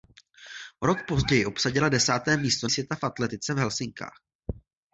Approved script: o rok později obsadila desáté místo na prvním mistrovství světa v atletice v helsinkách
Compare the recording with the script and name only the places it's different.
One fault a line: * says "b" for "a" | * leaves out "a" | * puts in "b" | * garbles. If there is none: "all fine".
* leaves out "na prvním mistrovství"